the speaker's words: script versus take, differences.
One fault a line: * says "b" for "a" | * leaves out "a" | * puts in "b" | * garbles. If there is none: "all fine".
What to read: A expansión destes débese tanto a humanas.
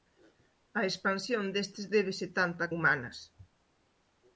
all fine